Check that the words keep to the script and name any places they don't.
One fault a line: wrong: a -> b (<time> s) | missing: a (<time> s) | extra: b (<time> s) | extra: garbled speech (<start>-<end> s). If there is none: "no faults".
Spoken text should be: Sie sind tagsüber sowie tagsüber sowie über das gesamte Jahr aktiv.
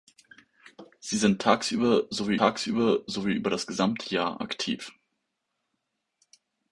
no faults